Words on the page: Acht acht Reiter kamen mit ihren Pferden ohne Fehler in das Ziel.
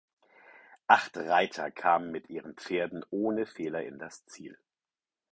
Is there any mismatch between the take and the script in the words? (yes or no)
yes